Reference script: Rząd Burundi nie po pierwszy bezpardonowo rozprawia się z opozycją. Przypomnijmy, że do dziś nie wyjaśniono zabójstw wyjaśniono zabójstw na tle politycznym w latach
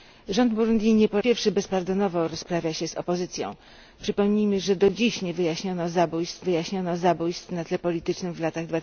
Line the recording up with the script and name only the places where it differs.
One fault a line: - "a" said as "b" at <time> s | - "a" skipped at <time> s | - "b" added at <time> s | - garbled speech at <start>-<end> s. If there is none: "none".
none